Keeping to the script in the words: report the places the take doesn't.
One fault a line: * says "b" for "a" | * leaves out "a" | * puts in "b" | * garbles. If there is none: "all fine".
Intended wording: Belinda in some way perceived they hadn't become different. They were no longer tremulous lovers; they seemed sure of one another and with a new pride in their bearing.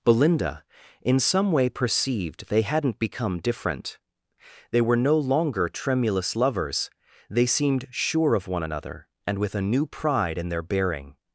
all fine